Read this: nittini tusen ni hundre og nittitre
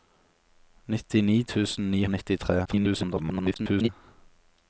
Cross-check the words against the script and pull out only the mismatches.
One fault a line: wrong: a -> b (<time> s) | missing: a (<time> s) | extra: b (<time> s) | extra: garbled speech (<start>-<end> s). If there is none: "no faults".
missing: hundre (2.0 s)
extra: garbled speech (2.6-3.9 s)